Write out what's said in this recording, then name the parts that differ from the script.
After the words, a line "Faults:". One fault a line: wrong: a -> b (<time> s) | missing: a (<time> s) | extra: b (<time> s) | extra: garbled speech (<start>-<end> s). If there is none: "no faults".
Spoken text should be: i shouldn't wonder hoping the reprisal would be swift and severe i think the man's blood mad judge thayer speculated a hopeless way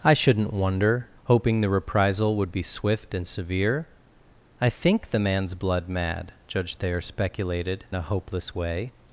i shouldn't wonder hoping the reprisal would be swift and severe i think the man's blood mad judge thayer speculated a hopeless way
Faults:
no faults